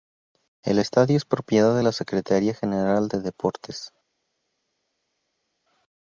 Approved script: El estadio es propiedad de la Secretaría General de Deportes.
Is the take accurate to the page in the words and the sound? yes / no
yes